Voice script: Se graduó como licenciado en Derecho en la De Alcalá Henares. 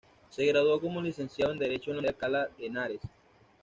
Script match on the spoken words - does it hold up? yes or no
yes